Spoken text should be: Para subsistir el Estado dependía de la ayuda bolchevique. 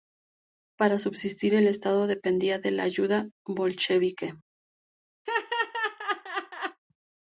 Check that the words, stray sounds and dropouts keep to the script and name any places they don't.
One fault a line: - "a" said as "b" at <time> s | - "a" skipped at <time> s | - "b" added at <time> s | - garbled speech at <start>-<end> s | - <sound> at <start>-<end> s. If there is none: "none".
- laugh at 5.3-6.8 s